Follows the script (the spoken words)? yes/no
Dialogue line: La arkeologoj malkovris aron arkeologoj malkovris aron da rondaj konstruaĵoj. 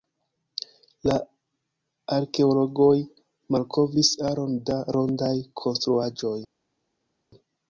no